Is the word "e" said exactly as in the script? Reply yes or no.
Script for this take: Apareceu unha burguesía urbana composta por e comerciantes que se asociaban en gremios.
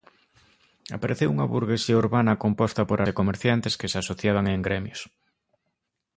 yes